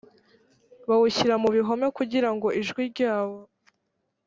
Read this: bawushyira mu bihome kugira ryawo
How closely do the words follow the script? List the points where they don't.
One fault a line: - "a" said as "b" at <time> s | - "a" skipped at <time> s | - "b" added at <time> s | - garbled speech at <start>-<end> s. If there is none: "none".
- "ngo ijwi" added at 2.4 s